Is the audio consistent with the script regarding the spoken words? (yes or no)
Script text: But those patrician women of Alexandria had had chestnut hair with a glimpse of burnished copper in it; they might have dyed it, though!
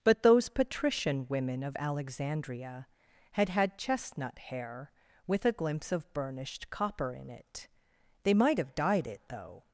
yes